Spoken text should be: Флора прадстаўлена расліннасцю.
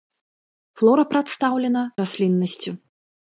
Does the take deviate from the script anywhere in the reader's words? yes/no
no